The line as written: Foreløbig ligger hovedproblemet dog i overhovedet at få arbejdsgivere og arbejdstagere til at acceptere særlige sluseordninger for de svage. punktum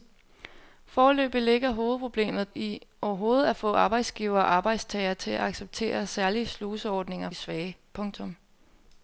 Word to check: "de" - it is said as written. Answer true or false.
false